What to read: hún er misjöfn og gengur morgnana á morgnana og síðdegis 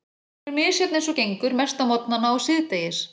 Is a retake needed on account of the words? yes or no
yes